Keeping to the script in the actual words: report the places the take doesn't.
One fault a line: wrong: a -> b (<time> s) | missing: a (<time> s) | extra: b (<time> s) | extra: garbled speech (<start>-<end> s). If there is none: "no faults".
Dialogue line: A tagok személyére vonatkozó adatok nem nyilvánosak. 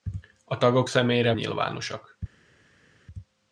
missing: vonatkozó adatok nem (1.3 s)